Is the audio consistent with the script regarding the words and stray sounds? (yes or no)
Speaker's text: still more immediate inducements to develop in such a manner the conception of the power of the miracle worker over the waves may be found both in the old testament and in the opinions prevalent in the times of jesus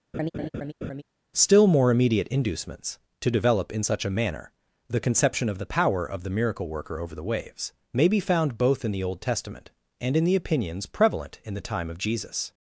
no